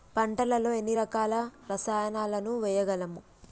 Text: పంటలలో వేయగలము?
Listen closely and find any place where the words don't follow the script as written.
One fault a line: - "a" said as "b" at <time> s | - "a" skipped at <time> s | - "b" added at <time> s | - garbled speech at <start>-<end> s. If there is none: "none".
- "ఎన్ని రకాల రసాయనాలను" added at 0.7 s